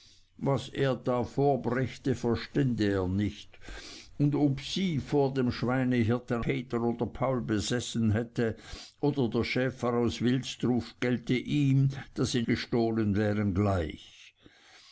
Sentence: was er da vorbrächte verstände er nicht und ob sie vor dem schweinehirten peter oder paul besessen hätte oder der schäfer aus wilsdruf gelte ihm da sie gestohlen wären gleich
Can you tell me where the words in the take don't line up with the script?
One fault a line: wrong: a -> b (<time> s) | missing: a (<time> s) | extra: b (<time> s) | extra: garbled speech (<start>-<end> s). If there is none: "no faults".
no faults